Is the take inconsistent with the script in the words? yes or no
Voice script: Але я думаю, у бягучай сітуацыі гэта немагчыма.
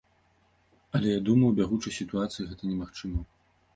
no